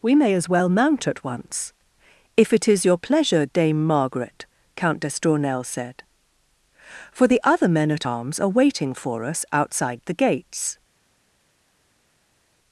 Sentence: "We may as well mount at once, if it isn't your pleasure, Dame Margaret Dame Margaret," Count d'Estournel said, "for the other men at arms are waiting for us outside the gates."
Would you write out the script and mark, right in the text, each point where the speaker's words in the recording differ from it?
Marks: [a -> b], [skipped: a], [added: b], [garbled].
"We may as well mount at once, if it [isn't -> is] your pleasure, Dame Margaret [skipped: Dame Margaret,"] Count d'Estournel said, "for the other men at arms are waiting for us outside the gates."